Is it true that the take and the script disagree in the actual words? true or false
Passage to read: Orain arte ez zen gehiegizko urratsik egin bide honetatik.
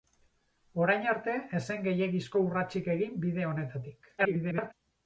true